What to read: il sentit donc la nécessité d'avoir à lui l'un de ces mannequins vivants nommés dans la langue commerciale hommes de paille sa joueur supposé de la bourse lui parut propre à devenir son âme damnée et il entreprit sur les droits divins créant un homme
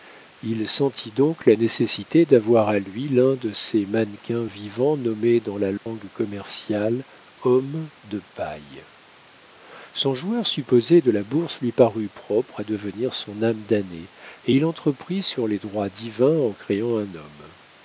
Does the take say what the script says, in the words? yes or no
no